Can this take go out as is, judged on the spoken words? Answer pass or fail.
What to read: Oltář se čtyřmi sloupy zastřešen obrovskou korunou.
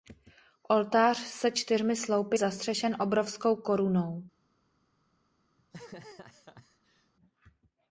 pass